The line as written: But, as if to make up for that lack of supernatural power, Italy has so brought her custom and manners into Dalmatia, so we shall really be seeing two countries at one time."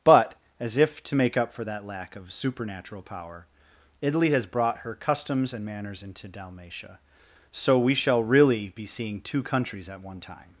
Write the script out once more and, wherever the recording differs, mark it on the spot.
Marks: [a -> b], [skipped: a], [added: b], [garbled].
But, as if to make up for that lack of supernatural power, Italy has [skipped: so] brought her [custom -> customs] and manners into Dalmatia, so we shall really be seeing two countries at one time."